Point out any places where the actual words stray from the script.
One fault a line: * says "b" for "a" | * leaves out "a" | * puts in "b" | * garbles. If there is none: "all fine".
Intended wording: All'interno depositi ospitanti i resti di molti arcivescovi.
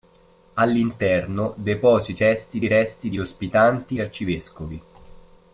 * says "resti" for "ospitanti"
* says "ospitanti" for "molti"